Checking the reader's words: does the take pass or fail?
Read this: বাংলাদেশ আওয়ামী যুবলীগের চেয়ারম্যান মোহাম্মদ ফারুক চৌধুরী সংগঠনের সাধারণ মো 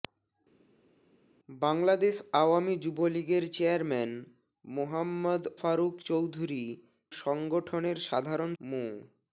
pass